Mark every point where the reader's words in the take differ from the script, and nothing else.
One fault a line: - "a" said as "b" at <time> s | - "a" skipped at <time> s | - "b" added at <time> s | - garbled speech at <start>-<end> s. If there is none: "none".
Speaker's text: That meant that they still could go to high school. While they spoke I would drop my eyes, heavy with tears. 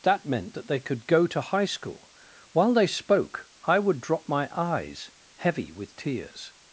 - "still" skipped at 0.8 s